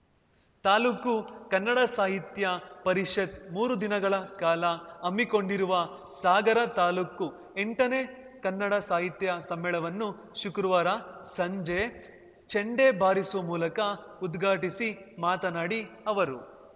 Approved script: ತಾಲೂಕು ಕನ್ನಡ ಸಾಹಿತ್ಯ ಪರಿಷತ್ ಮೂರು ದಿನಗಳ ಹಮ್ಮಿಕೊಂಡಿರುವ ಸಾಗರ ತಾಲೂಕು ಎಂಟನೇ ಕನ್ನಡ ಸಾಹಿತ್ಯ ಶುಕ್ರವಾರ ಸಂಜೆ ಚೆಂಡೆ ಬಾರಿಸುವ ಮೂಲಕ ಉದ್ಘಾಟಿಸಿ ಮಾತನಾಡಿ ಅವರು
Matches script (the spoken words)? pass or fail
fail